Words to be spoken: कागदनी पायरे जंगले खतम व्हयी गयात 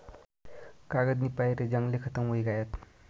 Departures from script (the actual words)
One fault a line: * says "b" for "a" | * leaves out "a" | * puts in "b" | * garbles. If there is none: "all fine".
all fine